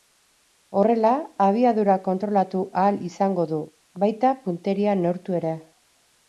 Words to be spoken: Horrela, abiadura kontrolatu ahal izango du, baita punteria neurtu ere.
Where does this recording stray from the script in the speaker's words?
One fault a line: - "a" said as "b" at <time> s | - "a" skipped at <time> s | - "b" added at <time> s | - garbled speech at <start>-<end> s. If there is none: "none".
none